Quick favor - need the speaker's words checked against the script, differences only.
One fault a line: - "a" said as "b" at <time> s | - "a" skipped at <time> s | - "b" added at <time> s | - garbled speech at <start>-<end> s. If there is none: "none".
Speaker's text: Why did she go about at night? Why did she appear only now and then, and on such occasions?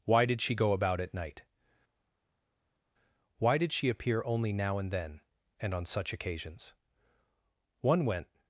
- "One went" added at 7.8 s